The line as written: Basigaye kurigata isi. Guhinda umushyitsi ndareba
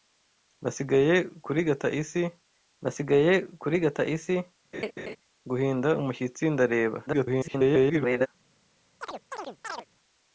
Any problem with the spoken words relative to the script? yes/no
yes